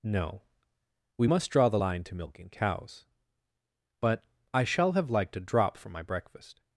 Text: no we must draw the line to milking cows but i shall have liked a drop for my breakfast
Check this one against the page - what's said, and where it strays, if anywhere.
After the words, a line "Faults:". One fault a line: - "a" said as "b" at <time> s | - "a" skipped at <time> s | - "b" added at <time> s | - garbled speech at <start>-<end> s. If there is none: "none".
no we must draw the line to milking cows but i shall have liked a drop for my breakfast
Faults:
none